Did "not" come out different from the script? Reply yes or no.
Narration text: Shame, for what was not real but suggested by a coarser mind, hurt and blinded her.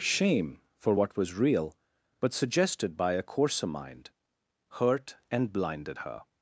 yes